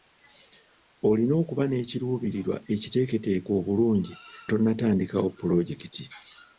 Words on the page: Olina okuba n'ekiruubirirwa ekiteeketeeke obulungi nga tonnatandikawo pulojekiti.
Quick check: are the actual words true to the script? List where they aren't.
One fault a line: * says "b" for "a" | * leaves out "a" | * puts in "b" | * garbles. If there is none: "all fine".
* leaves out "nga"